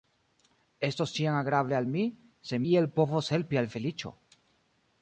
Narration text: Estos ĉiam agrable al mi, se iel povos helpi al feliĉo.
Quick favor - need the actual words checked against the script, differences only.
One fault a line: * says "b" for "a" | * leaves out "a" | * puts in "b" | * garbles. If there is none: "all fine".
all fine